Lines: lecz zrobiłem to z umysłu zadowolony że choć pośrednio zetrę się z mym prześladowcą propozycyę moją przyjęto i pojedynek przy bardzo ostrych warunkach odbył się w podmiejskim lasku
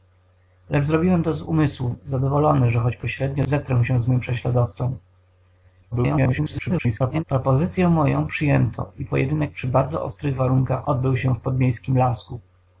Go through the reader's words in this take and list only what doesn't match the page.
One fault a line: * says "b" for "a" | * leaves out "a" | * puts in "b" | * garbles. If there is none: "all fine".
* garbles